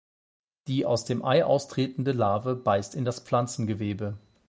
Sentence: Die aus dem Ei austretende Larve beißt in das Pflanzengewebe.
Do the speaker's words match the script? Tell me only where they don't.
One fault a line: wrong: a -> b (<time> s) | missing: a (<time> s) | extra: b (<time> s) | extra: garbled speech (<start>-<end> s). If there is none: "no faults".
no faults